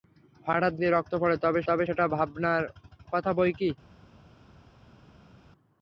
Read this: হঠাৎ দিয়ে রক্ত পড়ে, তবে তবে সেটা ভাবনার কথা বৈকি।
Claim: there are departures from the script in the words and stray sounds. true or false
false